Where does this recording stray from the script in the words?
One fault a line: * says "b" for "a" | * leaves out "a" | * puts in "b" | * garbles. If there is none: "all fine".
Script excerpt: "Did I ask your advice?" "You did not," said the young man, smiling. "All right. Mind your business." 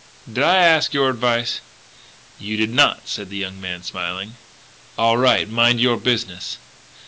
all fine